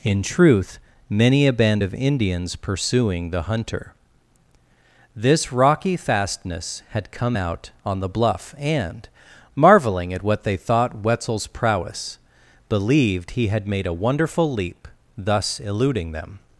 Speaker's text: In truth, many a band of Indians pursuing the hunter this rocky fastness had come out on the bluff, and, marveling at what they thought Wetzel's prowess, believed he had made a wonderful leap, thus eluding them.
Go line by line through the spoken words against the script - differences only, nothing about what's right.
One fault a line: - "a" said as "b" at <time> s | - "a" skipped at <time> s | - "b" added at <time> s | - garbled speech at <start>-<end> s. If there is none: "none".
none